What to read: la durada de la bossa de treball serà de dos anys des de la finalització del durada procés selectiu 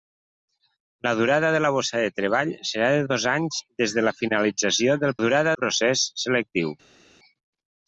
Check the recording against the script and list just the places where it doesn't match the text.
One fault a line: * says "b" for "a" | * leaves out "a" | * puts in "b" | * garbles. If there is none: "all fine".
all fine